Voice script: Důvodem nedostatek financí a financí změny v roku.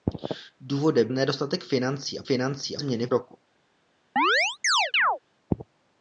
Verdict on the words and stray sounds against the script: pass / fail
fail